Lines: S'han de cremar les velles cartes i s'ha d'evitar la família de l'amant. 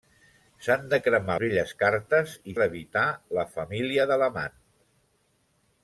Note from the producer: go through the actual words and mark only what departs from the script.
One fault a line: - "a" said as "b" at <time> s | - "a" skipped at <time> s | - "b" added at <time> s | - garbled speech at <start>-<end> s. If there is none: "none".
- "les" skipped at 1.4 s
- "s'ha" skipped at 2.6 s